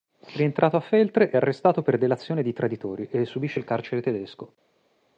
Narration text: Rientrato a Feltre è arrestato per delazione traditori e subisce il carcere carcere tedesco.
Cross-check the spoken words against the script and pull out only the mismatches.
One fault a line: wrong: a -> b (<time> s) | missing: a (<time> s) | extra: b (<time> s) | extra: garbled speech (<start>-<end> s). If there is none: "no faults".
extra: di (2.4 s)
missing: carcere (4.0 s)